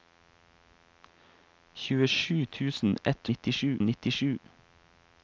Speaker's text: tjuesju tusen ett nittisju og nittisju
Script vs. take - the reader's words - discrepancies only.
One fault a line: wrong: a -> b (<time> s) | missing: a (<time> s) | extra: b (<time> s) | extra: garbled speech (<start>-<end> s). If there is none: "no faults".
no faults